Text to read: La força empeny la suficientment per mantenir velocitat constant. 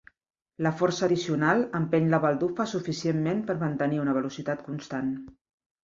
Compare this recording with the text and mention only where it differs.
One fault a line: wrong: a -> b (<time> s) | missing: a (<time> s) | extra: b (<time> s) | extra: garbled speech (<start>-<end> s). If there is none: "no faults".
extra: addicional (1.1 s)
extra: baldufa (2.3 s)
extra: una (4.1 s)